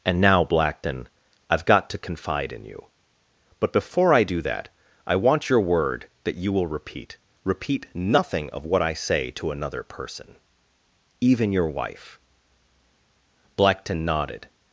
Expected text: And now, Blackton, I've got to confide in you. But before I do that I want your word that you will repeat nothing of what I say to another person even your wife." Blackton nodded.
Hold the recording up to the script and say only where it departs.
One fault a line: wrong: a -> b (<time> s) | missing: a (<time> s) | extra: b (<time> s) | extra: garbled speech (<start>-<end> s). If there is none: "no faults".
extra: repeat (7.4 s)